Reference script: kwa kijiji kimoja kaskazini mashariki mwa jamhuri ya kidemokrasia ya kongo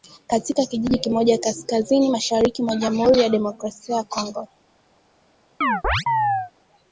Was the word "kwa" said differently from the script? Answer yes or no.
yes